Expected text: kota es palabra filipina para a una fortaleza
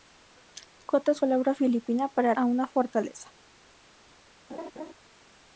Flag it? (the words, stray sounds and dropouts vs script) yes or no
yes